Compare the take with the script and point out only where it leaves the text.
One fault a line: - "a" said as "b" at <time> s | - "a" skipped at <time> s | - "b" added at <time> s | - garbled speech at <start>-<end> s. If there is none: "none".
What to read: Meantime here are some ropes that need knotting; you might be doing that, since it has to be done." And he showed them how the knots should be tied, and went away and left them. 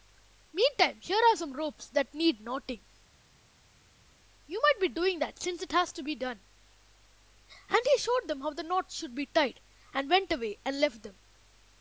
none